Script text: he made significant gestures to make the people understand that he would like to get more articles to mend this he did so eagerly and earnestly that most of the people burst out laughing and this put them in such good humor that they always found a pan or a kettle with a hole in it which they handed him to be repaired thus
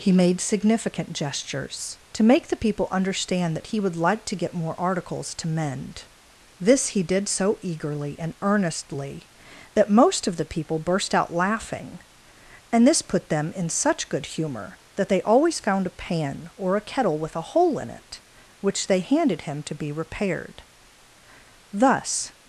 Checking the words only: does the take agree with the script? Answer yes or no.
yes